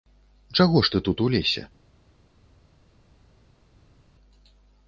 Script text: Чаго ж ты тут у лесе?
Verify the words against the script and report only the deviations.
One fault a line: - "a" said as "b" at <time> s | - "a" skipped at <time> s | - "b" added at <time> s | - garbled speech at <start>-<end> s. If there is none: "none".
none